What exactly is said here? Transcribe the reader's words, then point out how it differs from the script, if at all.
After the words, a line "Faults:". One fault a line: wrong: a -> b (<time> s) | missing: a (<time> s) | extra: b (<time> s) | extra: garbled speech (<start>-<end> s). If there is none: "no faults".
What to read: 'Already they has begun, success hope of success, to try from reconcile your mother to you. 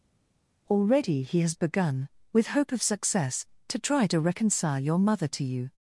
'Already he has begun, with hope of success, to try to reconcile your mother to you.
Faults:
wrong: they -> he (1.2 s)
wrong: success -> with (2.3 s)
wrong: from -> to (4.1 s)